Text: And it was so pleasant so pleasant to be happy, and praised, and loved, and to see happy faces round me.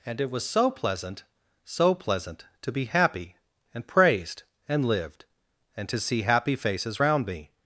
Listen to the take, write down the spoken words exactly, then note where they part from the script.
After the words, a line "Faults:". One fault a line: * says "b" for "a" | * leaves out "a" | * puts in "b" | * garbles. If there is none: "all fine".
And it was so pleasant so pleasant to be happy, and praised, and lived, and to see happy faces round me.
Faults:
* says "lived" for "loved"